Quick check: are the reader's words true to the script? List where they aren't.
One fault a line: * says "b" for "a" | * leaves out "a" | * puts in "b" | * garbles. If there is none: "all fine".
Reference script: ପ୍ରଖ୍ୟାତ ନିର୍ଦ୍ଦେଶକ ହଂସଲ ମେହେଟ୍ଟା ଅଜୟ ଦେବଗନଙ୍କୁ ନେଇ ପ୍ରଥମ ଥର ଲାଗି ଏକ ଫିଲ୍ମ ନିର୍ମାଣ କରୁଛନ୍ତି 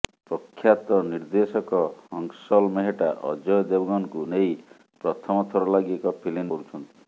* leaves out "ନିର୍ମାଣ"